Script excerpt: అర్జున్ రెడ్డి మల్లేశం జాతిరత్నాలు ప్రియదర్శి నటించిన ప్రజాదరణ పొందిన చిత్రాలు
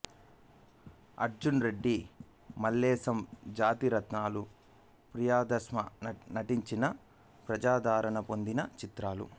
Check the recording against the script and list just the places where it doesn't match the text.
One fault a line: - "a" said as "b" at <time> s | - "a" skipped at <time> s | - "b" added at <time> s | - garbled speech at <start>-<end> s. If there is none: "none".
none